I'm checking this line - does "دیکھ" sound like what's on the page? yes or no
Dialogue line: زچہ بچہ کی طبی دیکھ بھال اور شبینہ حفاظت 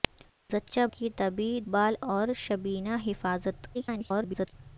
no